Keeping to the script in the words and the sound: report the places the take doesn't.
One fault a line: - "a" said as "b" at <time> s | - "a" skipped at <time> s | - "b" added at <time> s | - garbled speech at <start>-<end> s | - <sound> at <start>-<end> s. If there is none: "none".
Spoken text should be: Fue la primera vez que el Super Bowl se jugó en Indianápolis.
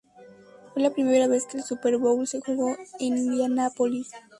none